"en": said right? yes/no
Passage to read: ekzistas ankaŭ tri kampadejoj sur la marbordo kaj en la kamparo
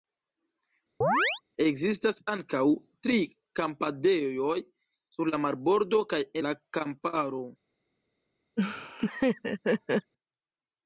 no